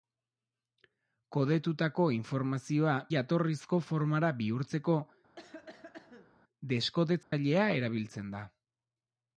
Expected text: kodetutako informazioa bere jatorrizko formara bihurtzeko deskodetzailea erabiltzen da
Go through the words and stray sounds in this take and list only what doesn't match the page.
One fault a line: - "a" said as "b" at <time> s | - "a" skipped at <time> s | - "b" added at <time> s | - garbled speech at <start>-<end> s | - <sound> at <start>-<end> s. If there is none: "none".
- "bere" skipped at 3.0 s
- cough at 5.4-6.4 s
- dropout at 7.2-7.3 s